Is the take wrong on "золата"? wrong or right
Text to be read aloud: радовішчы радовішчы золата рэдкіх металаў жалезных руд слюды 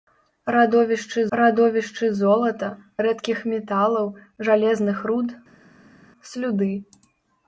right